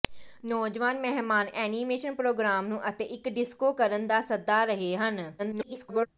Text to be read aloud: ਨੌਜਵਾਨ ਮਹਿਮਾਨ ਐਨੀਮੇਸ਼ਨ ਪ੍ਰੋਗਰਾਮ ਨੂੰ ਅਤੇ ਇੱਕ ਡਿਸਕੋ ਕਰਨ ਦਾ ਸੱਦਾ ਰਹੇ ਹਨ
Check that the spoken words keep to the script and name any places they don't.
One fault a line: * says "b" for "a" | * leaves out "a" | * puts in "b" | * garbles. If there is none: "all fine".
* garbles